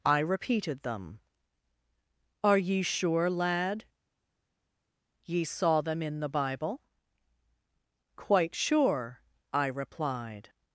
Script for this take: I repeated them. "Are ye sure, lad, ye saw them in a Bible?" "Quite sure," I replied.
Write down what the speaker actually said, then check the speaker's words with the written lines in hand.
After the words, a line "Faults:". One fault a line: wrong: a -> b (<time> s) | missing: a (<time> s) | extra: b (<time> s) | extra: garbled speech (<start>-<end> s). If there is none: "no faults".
I repeated them. "Are ye sure, lad, ye saw them in the Bible?" "Quite sure," I replied.
Faults:
wrong: a -> the (6.2 s)